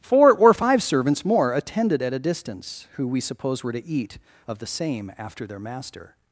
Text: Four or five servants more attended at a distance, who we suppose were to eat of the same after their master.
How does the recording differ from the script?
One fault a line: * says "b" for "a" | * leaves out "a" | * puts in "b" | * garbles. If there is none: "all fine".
all fine